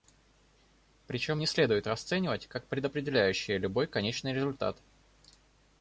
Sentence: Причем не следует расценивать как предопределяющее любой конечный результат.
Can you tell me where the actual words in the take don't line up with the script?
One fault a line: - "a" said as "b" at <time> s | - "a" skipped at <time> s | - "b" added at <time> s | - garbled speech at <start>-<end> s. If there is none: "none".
none